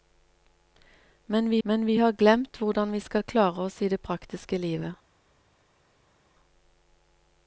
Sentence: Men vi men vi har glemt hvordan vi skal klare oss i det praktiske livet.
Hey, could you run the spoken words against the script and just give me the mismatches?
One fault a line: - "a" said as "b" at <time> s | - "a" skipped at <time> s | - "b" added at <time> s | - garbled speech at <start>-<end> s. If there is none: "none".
none